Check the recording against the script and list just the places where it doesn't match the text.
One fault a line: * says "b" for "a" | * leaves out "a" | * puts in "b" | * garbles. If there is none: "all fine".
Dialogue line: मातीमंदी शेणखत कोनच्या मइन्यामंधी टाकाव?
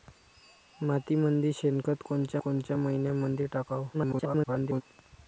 * puts in "कोनच्या"
* garbles